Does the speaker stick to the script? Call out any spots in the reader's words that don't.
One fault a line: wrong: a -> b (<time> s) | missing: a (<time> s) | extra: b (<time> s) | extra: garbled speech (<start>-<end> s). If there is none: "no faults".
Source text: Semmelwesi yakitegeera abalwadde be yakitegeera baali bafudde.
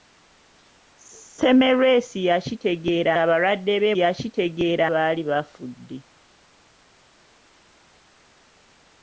no faults